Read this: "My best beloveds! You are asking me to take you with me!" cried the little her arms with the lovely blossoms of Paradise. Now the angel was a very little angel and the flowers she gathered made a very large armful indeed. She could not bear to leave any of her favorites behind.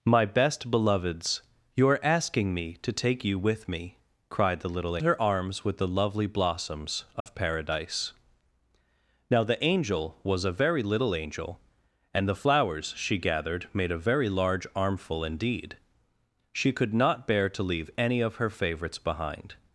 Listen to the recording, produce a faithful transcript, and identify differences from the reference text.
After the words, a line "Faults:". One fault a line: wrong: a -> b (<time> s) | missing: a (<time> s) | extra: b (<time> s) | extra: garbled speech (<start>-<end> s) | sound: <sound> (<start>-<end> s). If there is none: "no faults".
"My best beloveds! You are asking me to take you with me!" cried the little her arms with the lovely blossoms of Paradise. Now the angel was a very little angel and the flowers she gathered made a very large armful indeed. She could not bear to leave any of her favorites behind.
Faults:
sound: dropout (7.2-7.3 s)